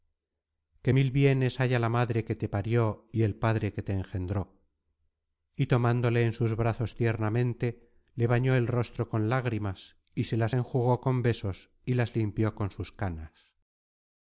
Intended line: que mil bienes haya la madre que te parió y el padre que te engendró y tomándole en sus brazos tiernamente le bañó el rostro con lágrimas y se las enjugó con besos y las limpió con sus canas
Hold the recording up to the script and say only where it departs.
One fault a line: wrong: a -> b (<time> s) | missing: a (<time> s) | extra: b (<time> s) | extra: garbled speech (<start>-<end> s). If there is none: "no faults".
no faults